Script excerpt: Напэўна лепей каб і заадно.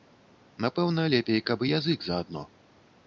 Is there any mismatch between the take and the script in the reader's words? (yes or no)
yes